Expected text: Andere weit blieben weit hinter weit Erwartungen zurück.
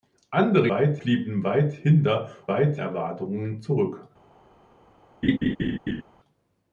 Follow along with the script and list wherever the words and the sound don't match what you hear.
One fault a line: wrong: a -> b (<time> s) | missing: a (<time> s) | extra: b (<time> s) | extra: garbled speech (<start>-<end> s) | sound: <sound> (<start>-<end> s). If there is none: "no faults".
sound: laugh (5.2-6.0 s)